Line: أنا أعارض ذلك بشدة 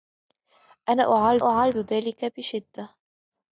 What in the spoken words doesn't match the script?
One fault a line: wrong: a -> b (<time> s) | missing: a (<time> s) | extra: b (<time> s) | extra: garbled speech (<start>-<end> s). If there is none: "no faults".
extra: أعارض (1.4 s)